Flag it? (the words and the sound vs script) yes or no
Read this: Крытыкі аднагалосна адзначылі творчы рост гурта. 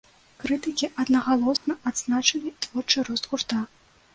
yes